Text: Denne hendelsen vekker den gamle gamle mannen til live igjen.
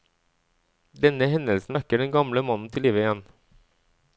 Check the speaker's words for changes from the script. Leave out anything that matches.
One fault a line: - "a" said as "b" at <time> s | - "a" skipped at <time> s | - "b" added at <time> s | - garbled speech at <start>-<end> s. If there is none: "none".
- "gamle" skipped at 2.4 s